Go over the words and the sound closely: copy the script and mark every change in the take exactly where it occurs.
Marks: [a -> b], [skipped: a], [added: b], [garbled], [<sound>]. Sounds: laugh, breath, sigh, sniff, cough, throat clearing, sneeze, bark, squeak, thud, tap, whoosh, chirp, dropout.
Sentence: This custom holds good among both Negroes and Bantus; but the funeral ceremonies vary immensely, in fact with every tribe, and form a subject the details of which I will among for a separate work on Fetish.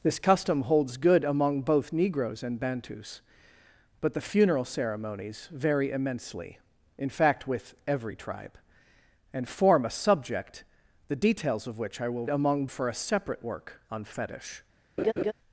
This custom holds good among both Negroes and Bantus; but the funeral ceremonies vary immensely, in fact with every tribe, and form a subject the details of which I will among for a separate work on Fetish. [laugh]